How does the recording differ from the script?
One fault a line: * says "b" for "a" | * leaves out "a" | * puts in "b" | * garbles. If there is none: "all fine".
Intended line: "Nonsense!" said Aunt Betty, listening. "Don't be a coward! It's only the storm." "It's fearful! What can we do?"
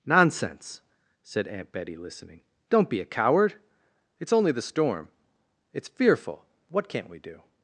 * says "can't" for "can"